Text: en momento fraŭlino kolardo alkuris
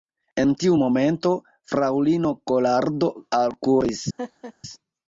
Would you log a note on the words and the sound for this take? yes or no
yes